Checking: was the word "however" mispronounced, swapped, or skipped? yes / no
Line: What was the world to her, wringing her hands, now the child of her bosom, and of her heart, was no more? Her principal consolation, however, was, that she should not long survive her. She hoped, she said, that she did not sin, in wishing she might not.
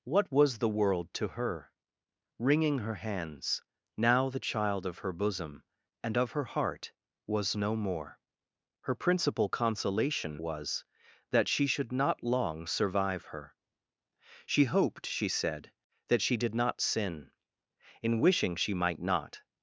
yes